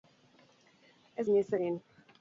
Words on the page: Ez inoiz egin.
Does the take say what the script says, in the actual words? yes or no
yes